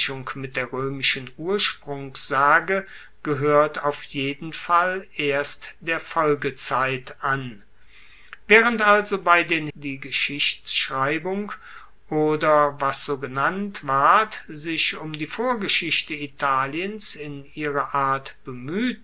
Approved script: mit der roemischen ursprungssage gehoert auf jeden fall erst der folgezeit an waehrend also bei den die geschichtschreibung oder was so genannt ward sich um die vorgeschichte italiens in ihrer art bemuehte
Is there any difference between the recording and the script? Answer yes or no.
no